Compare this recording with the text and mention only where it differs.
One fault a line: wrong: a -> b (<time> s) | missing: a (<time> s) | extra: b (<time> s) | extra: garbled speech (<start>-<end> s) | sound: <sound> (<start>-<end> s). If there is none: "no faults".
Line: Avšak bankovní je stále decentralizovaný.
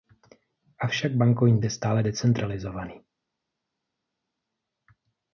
no faults